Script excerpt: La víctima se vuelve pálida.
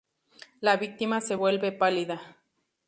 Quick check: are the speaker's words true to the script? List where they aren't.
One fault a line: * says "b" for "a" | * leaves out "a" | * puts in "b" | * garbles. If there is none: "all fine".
all fine